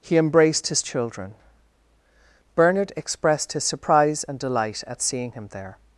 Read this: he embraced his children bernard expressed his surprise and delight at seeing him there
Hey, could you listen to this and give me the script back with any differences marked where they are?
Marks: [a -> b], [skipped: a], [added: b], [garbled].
he embraced his children bernard expressed his surprise and delight at seeing him there